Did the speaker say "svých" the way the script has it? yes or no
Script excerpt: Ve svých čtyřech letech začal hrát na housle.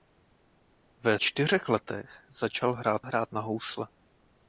no